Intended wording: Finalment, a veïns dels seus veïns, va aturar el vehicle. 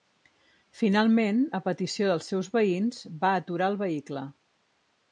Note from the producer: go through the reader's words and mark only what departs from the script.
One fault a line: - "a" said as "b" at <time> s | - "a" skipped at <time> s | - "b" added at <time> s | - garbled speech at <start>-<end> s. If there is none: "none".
- "veïns" said as "petició" at 1.7 s